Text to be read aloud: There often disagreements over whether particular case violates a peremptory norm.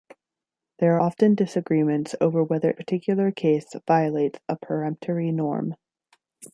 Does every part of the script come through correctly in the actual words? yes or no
yes